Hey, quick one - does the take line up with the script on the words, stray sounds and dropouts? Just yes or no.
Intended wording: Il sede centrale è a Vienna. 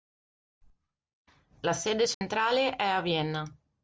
no